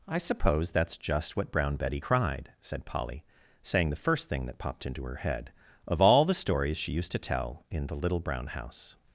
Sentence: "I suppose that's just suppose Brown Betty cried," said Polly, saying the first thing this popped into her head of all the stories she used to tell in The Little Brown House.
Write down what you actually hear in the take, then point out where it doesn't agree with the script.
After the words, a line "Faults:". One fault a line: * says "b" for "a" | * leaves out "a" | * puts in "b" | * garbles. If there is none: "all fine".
"I suppose that's just what Brown Betty cried," said Polly, saying the first thing that popped into her head of all the stories she used to tell in The Little Brown House.
Faults:
* says "what" for "suppose"
* says "that" for "this"